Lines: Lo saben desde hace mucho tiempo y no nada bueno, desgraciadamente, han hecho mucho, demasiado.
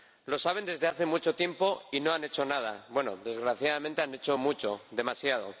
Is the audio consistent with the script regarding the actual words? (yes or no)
no